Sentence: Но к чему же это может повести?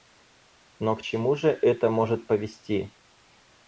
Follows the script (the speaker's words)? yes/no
yes